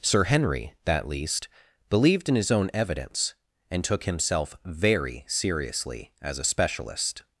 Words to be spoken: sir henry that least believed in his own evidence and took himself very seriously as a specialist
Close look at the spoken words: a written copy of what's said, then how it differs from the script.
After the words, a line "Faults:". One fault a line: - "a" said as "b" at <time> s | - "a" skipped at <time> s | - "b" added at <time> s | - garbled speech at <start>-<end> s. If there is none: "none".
sir henry that least believed in his own evidence and took himself very seriously as a specialist
Faults:
none